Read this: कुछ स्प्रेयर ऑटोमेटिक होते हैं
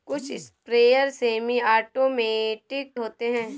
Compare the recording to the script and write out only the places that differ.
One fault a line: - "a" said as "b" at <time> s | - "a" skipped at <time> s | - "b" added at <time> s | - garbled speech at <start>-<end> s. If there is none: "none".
- "सेमी" added at 1.1 s